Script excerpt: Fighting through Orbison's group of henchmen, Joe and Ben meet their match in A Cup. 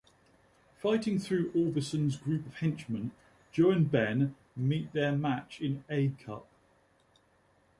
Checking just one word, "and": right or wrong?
right